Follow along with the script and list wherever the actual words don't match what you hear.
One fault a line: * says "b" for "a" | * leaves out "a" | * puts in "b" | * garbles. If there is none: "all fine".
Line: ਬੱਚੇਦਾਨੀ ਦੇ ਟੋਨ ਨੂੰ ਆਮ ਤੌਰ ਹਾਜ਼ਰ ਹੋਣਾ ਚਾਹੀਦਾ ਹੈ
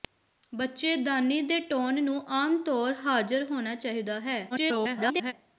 * garbles